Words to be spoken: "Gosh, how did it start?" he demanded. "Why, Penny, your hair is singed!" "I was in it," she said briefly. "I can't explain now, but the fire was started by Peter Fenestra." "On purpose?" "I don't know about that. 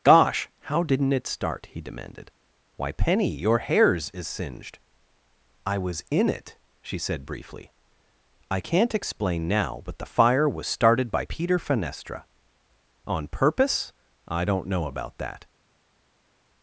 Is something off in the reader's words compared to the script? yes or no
yes